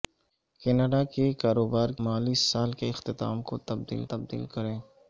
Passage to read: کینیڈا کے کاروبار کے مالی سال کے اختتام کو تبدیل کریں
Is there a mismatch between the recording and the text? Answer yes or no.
yes